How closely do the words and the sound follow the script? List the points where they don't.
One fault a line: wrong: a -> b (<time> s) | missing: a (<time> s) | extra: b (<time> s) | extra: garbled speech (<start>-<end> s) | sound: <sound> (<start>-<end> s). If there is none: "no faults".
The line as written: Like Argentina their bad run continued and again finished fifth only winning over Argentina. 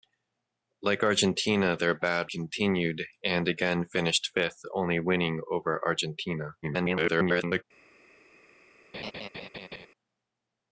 missing: run (2.3 s)
extra: garbled speech (6.6-7.6 s)
sound: laugh (8.9-9.9 s)